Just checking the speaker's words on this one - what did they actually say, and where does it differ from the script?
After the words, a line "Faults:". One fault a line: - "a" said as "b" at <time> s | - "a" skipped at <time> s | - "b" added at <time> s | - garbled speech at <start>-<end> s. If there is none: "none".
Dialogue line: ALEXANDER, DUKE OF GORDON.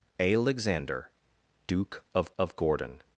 ALEXANDER, DUKE OF OF GORDON.
Faults:
- "OF" added at 2.4 s